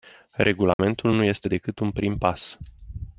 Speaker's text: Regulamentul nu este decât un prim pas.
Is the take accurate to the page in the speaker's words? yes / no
yes